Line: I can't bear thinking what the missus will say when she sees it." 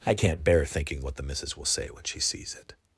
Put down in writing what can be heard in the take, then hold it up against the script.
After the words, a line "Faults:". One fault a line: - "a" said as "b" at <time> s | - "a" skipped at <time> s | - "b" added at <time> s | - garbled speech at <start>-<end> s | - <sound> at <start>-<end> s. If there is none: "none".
I can't bear thinking what the missus will say when she sees it."
Faults:
none